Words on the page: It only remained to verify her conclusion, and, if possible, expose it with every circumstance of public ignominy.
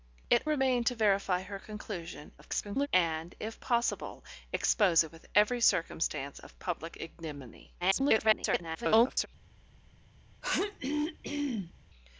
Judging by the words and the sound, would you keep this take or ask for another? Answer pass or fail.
fail